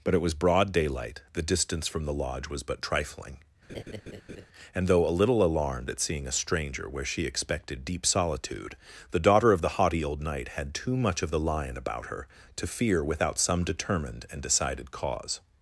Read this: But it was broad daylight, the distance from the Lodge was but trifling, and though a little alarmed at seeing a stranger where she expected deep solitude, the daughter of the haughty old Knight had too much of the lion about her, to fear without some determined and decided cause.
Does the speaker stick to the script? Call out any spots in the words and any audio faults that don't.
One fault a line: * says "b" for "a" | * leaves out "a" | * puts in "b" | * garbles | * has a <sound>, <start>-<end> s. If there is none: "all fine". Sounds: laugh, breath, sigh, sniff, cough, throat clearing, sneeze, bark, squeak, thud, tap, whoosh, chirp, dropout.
* has a laugh, 3.7-4.5 s